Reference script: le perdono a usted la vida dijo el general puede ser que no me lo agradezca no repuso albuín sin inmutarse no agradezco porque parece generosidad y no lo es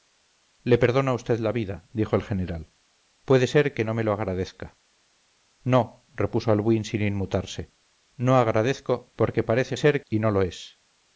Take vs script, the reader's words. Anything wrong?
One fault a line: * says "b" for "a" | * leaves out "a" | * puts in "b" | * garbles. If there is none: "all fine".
* says "ser" for "generosidad"